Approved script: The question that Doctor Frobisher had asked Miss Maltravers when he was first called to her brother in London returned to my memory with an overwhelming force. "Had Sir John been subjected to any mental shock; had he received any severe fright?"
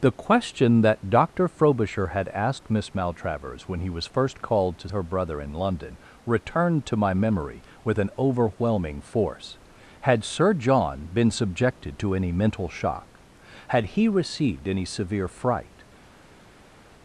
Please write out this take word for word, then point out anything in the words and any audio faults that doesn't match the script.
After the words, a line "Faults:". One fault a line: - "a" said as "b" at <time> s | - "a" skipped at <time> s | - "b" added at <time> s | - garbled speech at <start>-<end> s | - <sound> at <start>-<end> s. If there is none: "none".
The question that Doctor Frobisher had asked Miss Maltravers when he was first called to her brother in London returned to my memory with an overwhelming force. "Had Sir John been subjected to any mental shock; had he received any severe fright?"
Faults:
none